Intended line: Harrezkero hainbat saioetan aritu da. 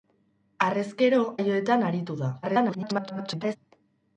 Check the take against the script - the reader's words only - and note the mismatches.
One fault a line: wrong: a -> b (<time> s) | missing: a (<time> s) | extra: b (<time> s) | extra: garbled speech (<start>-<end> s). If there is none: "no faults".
missing: hainbat (1.2 s)
extra: garbled speech (2.4-3.6 s)